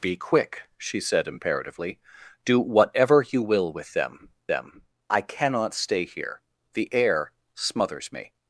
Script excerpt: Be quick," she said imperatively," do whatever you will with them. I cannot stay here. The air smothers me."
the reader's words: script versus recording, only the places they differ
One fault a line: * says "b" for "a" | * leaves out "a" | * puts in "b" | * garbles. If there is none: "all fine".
* puts in "them"